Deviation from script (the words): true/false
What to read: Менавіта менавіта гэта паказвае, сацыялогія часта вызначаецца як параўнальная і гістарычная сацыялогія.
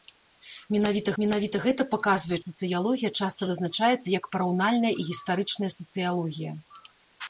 false